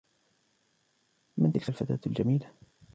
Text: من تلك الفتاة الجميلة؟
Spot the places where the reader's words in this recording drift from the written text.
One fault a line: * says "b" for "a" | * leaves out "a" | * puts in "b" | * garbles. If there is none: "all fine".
all fine